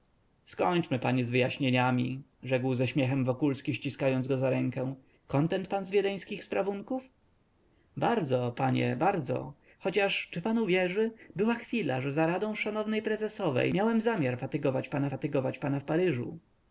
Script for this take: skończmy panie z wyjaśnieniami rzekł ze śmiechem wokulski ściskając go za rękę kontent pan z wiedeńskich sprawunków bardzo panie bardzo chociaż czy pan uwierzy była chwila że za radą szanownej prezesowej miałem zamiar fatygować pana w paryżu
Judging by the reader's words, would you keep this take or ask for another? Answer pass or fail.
fail